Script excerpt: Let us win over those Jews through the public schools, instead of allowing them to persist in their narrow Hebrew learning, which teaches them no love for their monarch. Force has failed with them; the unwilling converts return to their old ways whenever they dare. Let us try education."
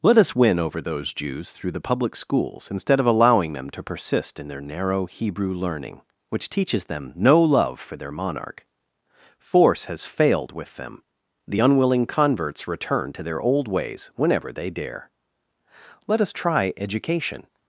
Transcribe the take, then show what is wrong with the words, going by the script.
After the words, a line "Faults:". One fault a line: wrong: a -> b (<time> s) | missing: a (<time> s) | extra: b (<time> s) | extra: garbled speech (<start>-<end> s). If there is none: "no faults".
Let us win over those Jews through the public schools, instead of allowing them to persist in their narrow Hebrew learning, which teaches them no love for their monarch. Force has failed with them; the unwilling converts return to their old ways whenever they dare. Let us try education."
Faults:
no faults